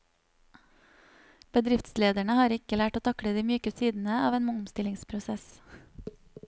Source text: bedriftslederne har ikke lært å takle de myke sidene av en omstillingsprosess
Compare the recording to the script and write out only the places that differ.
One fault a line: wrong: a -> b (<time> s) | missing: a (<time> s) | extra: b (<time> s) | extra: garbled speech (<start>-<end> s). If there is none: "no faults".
no faults